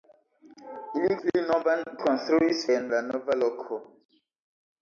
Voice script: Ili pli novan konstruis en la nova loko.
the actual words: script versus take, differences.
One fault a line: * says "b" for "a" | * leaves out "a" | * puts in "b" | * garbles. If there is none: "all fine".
all fine